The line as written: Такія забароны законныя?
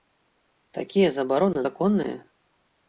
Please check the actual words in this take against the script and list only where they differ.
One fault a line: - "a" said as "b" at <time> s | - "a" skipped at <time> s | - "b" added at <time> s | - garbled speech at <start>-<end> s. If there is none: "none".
none